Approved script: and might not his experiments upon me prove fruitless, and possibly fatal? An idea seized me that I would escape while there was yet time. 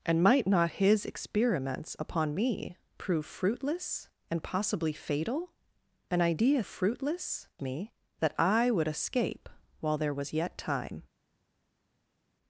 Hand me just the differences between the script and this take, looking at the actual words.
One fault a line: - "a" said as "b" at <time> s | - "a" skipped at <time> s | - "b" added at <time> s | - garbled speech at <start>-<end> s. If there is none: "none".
- "seized" said as "fruitless" at 6.6 s